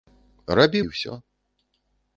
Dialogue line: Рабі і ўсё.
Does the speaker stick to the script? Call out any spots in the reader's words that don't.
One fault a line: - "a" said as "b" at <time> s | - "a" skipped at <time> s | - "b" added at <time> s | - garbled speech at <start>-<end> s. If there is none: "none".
none